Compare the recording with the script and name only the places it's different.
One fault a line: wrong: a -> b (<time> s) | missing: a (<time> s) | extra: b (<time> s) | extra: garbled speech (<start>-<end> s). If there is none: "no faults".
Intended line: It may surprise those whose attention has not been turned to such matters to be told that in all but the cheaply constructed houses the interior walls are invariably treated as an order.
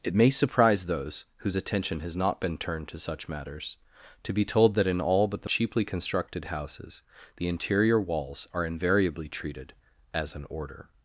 no faults